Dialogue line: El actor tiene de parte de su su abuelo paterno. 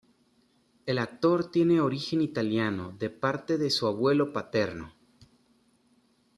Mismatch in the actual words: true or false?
true